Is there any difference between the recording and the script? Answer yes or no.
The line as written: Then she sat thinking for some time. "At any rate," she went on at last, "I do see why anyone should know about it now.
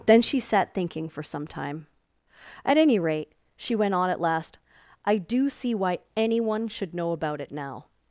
no